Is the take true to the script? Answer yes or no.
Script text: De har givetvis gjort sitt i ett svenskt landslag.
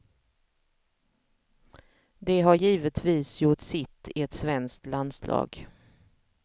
yes